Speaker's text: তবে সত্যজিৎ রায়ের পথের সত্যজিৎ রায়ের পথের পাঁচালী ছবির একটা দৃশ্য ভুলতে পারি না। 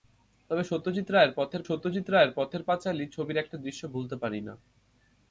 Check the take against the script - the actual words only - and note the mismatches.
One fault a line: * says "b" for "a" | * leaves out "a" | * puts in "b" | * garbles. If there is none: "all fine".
all fine